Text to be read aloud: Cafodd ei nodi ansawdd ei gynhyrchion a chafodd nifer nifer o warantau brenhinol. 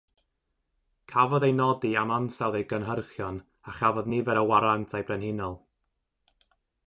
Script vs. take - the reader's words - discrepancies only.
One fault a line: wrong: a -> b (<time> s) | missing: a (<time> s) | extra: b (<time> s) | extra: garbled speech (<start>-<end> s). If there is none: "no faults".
extra: am (2.0 s)
missing: nifer (4.4 s)